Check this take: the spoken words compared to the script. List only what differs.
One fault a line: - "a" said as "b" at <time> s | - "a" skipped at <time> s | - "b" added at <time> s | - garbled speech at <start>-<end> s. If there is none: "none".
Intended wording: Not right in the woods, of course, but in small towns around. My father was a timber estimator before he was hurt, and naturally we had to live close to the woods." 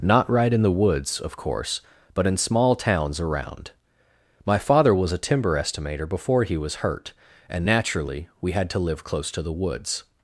none